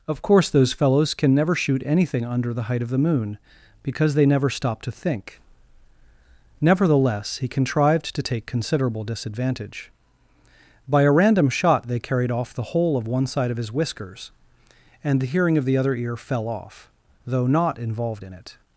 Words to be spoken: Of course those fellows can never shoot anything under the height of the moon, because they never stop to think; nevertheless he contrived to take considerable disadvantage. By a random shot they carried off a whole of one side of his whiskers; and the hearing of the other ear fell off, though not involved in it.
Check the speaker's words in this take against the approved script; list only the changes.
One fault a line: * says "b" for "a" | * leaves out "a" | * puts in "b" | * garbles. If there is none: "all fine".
* says "the" for "a"